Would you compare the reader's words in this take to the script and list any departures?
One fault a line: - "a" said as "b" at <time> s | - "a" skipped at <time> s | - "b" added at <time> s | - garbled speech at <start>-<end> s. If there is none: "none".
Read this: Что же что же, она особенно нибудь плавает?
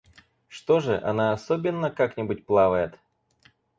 - "что же" skipped at 1.0 s
- "как" added at 1.9 s